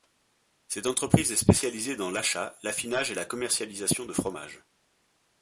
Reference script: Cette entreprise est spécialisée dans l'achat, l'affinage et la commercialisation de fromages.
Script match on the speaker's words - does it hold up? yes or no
yes